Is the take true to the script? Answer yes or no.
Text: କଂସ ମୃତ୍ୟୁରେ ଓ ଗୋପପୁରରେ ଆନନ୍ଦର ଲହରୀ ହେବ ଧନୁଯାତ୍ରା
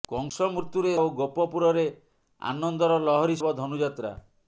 yes